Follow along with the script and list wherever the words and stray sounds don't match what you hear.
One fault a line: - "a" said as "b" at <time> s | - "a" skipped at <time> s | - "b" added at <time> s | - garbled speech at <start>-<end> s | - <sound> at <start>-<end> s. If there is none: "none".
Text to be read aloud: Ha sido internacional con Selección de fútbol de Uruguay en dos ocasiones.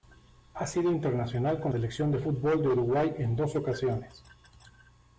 none